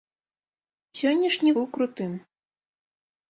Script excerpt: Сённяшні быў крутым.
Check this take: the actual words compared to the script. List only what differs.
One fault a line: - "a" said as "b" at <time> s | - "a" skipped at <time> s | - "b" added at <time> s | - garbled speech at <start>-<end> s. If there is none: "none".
none